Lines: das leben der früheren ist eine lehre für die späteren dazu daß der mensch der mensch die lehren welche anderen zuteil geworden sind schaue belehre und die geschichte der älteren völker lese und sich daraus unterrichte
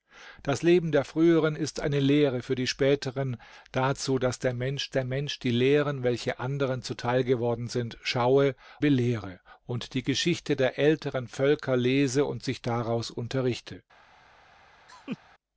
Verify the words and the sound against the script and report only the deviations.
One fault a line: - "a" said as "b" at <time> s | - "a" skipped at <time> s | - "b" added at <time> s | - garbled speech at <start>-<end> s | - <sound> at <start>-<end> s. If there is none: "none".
- laugh at 14.9-15.2 s